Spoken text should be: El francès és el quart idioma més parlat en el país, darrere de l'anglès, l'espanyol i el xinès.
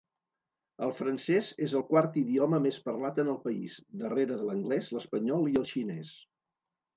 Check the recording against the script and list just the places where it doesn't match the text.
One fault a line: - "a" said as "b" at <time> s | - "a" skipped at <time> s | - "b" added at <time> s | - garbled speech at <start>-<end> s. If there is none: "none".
none